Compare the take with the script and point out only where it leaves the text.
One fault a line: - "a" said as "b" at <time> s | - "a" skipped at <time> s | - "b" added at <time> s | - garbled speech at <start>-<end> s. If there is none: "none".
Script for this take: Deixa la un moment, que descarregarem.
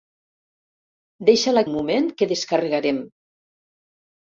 none